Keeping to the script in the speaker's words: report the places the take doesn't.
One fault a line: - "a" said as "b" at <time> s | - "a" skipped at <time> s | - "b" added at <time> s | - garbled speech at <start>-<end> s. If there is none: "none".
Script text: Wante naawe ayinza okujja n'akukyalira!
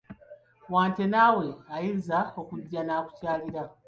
none